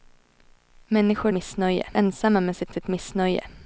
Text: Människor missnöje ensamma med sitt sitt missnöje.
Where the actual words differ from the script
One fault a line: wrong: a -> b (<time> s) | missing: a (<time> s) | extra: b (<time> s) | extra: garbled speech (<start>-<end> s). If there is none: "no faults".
no faults